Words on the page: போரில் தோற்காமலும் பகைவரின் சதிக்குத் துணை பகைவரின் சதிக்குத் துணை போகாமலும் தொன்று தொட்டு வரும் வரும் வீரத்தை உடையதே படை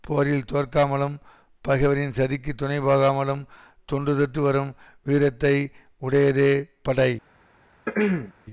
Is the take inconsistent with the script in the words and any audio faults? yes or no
yes